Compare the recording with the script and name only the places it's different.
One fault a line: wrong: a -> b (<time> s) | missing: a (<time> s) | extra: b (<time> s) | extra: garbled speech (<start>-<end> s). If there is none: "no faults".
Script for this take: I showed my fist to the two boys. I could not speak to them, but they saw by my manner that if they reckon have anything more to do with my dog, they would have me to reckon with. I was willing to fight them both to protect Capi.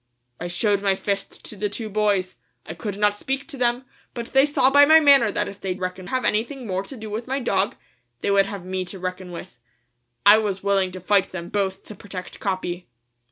no faults